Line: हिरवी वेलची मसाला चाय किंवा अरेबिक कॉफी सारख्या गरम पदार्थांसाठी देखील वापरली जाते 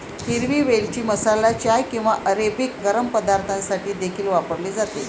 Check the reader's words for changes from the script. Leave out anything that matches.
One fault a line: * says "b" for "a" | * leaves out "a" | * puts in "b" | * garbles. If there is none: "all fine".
* leaves out "कॉफी सारख्या"